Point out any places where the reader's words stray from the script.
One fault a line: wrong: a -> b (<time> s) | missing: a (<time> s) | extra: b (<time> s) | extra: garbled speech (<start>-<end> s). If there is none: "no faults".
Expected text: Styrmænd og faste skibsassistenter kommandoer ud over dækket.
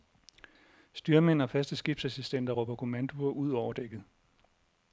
extra: råber (2.5 s)